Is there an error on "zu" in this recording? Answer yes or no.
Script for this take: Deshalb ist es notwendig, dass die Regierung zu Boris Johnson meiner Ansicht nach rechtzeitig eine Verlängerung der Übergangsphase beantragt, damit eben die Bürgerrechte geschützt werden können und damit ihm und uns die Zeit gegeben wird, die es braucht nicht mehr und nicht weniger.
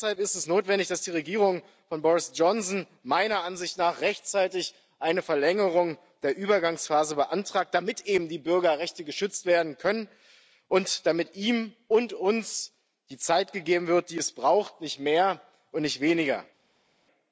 yes